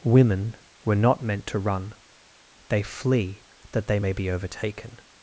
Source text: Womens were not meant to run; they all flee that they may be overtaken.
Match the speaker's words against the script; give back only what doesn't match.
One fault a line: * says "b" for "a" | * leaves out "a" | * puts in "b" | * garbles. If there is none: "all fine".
* says "Women" for "Womens"
* leaves out "all"